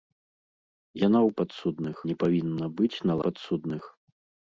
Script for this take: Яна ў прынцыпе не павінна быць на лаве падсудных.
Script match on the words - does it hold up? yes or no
no